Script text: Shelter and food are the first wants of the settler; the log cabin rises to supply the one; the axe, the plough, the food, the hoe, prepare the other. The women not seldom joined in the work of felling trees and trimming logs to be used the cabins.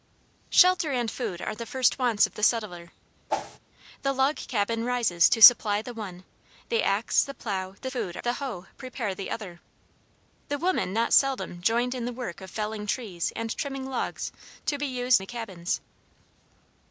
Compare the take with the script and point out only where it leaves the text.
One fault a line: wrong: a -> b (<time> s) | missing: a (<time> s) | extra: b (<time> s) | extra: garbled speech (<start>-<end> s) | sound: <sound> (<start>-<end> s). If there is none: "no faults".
sound: whoosh (3.3-3.6 s)